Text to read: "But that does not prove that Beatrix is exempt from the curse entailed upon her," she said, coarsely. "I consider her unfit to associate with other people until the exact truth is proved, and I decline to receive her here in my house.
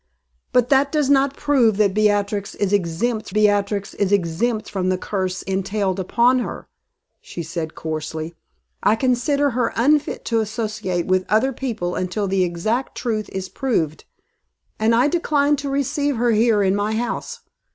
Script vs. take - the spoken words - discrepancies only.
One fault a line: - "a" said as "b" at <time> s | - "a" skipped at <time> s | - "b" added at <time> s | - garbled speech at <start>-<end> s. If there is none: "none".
- "Beatrix is exempt" added at 3.3 s